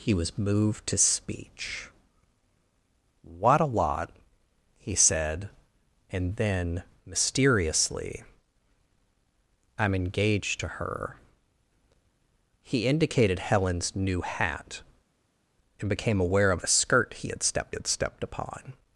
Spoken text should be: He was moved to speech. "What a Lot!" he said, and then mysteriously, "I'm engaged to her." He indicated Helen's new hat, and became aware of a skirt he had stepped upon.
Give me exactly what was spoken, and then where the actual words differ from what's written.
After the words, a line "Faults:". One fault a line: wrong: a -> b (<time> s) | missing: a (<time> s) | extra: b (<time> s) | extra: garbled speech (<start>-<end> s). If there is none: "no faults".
He was moved to speech. "What a Lot!" he said, and then mysteriously, "I'm engaged to her." He indicated Helen's new hat, and became aware of a skirt he had stepped had stepped upon.
Faults:
extra: had stepped (17.7 s)